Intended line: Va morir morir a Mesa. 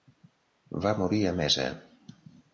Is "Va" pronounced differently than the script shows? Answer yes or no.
no